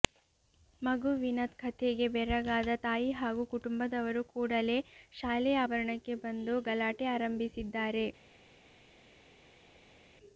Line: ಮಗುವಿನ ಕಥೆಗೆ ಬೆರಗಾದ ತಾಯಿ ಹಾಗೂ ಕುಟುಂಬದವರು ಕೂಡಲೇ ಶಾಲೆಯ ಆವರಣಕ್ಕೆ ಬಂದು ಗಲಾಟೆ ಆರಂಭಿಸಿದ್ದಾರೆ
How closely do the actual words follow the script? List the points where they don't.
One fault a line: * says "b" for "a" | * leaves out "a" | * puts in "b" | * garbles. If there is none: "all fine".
all fine